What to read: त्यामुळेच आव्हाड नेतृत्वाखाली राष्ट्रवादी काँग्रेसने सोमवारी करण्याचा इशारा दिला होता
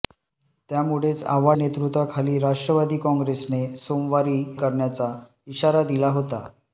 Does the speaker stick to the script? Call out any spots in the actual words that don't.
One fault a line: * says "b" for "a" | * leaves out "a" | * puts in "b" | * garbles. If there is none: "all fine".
all fine